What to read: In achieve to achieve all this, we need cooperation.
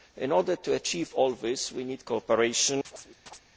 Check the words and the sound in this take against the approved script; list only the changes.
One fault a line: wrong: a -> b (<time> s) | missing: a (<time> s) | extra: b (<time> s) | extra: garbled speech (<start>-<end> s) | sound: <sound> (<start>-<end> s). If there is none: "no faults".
wrong: achieve -> order (0.3 s)
sound: chirp (2.8-3.4 s)